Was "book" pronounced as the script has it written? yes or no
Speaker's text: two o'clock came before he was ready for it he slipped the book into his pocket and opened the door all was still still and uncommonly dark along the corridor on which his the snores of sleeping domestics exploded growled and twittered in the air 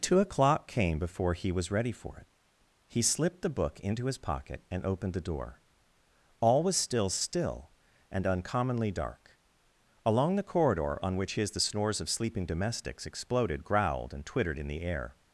yes